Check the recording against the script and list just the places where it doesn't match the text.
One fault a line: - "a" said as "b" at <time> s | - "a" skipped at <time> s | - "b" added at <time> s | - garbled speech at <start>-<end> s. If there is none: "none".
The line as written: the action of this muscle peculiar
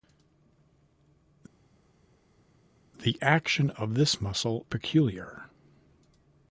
none